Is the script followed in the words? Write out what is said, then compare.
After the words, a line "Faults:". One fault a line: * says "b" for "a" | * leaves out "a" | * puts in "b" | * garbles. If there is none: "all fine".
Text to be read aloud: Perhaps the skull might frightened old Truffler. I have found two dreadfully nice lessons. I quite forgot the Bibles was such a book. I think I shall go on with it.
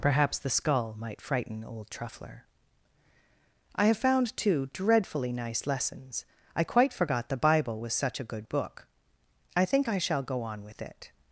Perhaps the skull might frighten old Truffler. I have found two dreadfully nice lessons. I quite forgot the Bible was such a good book. I think I shall go on with it.
Faults:
* says "frighten" for "frightened"
* says "Bible" for "Bibles"
* puts in "good"